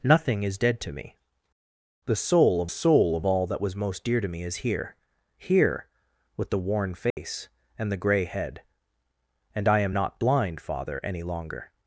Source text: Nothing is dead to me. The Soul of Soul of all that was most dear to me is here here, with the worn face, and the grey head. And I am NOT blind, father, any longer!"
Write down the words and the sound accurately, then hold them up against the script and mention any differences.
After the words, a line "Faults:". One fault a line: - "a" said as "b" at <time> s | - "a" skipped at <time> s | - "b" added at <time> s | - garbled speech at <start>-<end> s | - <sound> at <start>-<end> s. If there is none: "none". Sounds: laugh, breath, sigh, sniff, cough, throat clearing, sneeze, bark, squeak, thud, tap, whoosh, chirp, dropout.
Nothing is dead to me. The Soul of Soul of all that was most dear to me is here here, with the worn face, and the grey head. And I am NOT blind, father, any longer!"
Faults:
- dropout at 7.1-7.2 s